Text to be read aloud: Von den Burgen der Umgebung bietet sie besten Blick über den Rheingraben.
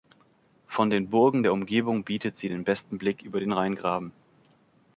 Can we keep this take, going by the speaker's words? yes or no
no